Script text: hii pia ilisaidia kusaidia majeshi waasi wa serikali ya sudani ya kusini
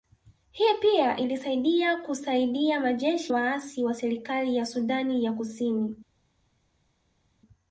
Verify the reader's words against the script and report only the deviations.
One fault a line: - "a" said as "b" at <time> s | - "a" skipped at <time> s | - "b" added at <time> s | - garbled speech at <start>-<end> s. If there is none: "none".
none